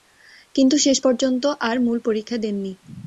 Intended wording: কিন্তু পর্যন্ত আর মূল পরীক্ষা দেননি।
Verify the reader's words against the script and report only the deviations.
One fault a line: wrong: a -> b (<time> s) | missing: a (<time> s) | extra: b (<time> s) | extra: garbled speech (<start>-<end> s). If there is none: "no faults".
extra: শেষ (0.8 s)